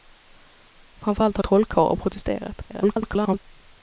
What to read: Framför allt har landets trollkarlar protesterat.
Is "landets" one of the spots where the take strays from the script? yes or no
yes